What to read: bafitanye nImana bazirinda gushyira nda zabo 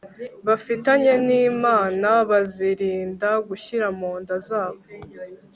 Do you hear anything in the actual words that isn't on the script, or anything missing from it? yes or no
yes